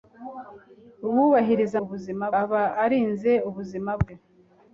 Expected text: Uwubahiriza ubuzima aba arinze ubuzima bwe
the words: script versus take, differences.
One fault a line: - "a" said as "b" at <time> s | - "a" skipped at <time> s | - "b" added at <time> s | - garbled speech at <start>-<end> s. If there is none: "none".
none